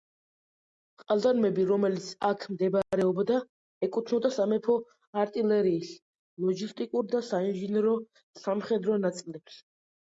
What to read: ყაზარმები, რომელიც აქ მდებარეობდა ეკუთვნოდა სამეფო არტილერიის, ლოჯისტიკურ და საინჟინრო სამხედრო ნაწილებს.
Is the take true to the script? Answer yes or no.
yes